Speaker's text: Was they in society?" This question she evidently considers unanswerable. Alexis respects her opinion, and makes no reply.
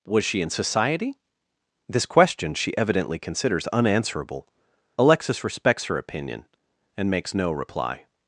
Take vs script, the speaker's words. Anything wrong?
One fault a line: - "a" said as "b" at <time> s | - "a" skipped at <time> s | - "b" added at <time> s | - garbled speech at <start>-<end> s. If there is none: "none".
- "they" said as "she" at 0.2 s